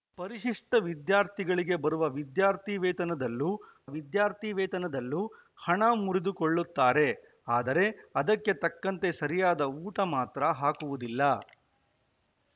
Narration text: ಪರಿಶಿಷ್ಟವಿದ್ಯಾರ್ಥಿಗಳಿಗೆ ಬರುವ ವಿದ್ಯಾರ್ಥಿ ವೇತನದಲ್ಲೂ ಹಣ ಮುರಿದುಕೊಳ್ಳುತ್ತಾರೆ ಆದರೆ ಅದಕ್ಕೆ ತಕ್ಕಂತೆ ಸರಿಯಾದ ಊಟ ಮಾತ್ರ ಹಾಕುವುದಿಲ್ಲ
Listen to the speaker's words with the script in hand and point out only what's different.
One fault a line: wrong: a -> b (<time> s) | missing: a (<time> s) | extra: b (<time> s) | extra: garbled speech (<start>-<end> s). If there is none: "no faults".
extra: ವಿದ್ಯಾರ್ಥಿ ವೇತನದಲ್ಲೂ (3.9 s)